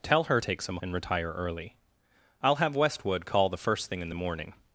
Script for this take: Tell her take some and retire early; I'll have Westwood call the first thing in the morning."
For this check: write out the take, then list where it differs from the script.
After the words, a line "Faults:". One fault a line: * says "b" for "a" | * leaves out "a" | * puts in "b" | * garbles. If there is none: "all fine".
Tell her take some and retire early; I'll have Westwood call the first thing in the morning."
Faults:
all fine